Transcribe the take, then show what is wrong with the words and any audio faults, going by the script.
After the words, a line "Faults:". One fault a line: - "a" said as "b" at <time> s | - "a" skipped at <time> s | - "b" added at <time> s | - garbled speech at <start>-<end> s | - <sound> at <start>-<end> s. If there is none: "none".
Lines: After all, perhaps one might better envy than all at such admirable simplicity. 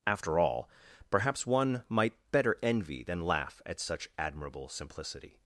After all, perhaps one might better envy than laugh at such admirable simplicity.
Faults:
- "all" said as "laugh" at 3.2 s